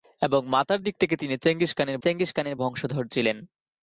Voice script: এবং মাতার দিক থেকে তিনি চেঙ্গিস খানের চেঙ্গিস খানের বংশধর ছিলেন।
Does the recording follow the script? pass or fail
pass